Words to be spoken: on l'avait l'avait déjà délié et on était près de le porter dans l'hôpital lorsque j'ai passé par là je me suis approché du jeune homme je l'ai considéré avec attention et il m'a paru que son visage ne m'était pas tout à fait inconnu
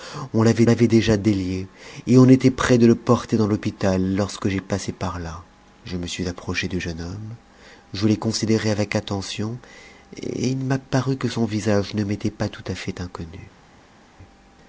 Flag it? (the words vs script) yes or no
no